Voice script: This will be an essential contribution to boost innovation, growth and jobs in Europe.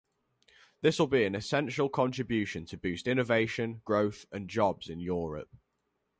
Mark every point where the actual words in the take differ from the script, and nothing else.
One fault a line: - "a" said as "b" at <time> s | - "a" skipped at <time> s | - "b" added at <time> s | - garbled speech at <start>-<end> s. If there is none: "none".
none